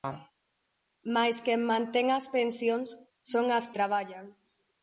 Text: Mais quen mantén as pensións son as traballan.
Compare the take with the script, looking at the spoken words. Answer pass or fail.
pass